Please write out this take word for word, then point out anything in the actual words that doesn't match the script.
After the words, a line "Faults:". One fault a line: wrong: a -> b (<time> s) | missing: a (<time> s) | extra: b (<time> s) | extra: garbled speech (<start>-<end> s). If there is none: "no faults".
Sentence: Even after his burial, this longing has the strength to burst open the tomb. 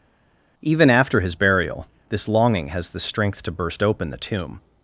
Even after his burial, this longing has the strength to burst open the tomb.
Faults:
no faults